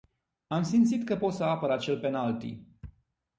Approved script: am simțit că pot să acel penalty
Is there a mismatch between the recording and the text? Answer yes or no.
yes